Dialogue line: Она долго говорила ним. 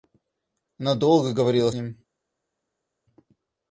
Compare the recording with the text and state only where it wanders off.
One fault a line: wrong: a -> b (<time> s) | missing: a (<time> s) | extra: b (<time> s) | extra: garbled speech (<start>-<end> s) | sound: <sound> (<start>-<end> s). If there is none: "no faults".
no faults